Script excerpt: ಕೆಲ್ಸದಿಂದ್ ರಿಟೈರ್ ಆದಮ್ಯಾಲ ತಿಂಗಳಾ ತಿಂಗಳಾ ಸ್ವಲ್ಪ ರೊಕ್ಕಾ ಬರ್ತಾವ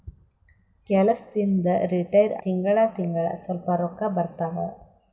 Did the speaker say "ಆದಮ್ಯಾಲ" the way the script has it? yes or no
no